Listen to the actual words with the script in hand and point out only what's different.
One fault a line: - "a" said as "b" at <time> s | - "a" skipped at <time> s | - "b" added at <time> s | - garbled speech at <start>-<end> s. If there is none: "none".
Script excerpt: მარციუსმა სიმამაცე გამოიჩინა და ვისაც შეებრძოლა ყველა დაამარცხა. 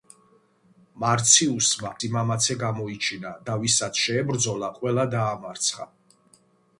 none